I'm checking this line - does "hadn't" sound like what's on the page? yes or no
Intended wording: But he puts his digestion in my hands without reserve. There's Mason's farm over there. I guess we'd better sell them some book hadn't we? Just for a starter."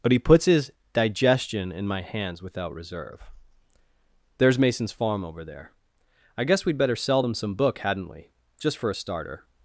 yes